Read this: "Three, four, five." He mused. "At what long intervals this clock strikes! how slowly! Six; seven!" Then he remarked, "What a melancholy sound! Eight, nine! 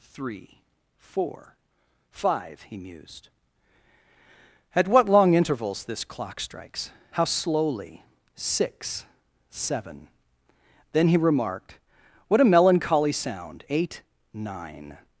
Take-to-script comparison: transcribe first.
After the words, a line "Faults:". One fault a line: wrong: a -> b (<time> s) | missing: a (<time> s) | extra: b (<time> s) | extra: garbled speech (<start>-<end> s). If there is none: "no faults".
"Three, four, five." He mused. "At what long intervals this clock strikes! how slowly! Six; seven!" Then he remarked, "What a melancholy sound! Eight, nine!
Faults:
no faults